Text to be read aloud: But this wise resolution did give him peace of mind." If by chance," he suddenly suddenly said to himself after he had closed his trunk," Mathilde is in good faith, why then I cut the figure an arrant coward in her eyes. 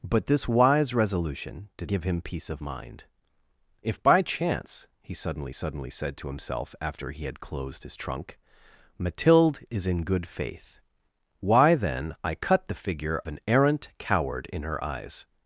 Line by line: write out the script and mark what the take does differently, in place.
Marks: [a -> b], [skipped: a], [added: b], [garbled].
But this wise resolution did give him peace of mind." If by chance," he suddenly suddenly said to himself after he had closed his trunk," Mathilde is in good faith, why then I cut the figure an arrant coward in her eyes.